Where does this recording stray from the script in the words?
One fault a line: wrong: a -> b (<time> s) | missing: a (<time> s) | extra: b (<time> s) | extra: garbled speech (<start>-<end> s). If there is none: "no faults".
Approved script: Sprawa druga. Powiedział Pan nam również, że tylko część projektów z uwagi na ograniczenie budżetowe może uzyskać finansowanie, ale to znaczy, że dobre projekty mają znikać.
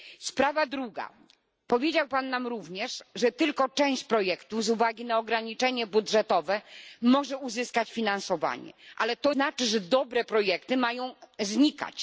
no faults